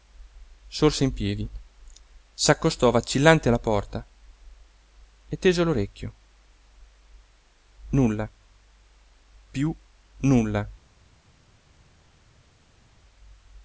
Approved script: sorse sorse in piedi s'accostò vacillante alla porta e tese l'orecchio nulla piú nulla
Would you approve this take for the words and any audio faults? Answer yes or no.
no